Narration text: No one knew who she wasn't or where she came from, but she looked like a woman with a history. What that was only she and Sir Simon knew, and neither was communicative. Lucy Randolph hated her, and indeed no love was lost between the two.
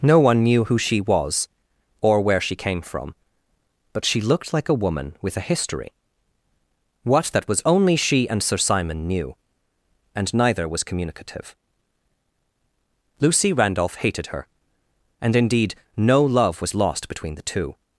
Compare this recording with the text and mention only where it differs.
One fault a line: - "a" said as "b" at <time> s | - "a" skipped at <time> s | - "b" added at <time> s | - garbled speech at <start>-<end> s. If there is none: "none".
- "wasn't" said as "was" at 1.0 s